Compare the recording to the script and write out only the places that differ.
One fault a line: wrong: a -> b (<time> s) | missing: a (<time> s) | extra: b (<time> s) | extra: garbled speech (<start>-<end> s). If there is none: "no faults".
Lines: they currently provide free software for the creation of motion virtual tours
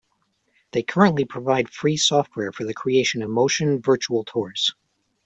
no faults